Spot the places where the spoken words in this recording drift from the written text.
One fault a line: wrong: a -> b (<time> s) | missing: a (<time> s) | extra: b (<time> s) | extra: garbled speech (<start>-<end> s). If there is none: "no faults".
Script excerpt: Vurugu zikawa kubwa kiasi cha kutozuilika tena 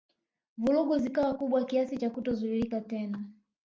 no faults